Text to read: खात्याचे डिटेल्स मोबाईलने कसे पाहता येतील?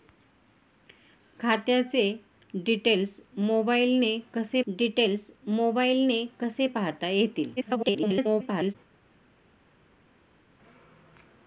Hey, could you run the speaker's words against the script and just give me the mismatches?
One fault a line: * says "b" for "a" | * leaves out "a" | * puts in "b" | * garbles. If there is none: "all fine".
* puts in "डिटेल्स मोबाईलने कसे"
* garbles